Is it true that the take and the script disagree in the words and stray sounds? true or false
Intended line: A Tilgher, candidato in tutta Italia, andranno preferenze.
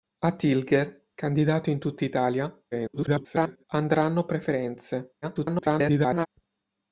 true